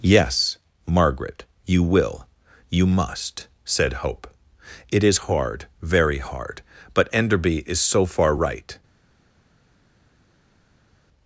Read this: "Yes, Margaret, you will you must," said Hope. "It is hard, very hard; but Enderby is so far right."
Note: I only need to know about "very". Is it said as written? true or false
true